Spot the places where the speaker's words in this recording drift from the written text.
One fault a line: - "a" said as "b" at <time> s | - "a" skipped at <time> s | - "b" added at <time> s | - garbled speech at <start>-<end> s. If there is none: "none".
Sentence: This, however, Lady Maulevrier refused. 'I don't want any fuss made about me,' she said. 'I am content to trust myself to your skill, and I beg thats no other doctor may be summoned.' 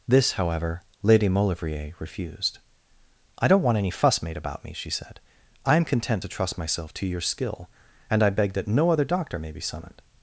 - "thats" said as "that" at 8.5 s